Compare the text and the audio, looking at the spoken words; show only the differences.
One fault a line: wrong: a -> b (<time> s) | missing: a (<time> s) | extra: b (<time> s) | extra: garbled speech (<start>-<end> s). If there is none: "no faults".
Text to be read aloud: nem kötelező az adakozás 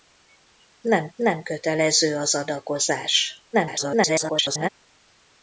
extra: nem (1.2 s)
extra: garbled speech (3.5-4.7 s)